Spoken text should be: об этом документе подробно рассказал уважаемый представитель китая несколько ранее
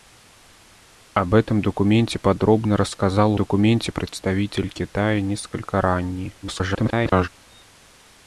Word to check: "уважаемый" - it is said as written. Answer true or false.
false